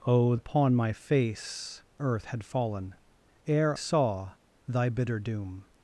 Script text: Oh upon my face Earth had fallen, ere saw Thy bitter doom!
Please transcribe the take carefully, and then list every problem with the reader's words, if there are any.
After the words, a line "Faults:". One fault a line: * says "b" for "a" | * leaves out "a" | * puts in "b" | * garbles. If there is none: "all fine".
Oh upon my face Earth had fallen, ere saw Thy bitter doom!
Faults:
all fine